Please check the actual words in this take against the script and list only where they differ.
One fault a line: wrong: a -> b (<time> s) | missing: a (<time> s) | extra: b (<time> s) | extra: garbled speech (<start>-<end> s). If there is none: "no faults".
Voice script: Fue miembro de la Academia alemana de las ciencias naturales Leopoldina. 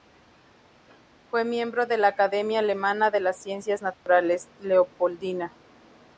no faults